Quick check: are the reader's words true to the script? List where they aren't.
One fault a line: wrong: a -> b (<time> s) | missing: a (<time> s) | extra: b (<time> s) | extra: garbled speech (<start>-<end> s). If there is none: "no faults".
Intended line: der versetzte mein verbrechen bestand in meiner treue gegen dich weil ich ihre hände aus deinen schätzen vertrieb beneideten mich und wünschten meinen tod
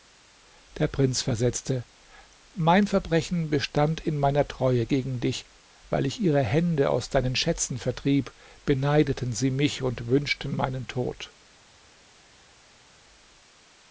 extra: prinz (0.9 s)
extra: sie (9.3 s)